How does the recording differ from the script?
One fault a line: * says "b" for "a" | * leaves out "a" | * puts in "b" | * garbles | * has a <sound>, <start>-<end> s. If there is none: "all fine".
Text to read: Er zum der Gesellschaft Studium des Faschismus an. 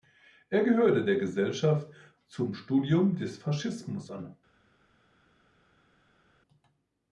* says "gehörte" for "zum"
* puts in "zum"